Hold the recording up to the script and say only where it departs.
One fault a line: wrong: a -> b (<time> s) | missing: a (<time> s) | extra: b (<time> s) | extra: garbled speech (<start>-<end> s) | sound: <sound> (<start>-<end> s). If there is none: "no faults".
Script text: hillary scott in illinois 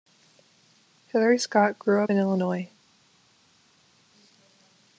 extra: grew up (1.8 s)